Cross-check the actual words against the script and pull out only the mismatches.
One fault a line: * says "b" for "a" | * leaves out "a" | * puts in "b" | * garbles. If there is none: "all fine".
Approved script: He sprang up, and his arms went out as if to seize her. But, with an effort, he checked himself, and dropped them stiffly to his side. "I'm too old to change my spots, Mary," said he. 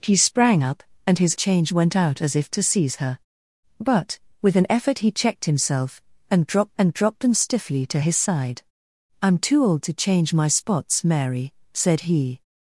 * says "change" for "arms"
* puts in "and dropped"